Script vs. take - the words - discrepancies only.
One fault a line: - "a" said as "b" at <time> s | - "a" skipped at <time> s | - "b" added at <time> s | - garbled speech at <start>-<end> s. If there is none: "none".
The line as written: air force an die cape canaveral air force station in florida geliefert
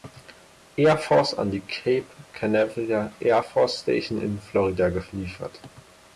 none